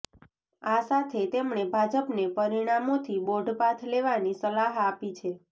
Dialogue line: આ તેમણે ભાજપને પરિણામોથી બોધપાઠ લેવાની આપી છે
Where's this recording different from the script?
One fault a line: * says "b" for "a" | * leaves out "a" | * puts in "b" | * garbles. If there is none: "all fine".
* puts in "સાથે"
* puts in "સલાહ"